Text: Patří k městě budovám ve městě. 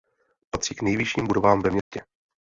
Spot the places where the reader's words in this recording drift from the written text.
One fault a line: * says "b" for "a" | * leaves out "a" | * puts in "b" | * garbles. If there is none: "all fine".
* says "nejvyšším" for "městě"